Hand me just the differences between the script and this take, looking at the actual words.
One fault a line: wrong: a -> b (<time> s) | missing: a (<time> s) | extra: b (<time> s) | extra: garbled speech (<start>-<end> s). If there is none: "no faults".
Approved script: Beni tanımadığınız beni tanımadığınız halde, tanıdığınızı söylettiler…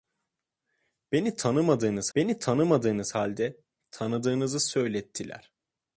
no faults